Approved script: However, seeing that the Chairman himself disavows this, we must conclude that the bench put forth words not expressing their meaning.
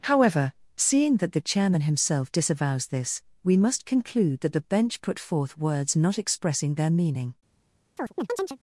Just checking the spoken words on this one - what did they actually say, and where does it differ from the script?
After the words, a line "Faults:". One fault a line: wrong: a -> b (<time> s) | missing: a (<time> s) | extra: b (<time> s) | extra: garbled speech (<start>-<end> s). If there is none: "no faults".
However, seeing that the Chairman himself disavows this, we must conclude that the bench put forth words not expressing their meaning.
Faults:
no faults